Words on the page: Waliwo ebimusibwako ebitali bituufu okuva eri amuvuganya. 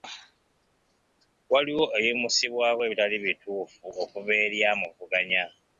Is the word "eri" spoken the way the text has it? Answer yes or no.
yes